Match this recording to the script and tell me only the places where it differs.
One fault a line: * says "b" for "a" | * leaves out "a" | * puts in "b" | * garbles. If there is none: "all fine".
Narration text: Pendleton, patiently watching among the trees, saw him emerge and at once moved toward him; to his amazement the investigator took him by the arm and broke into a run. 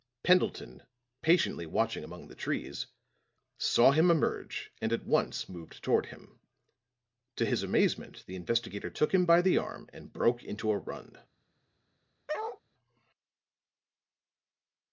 all fine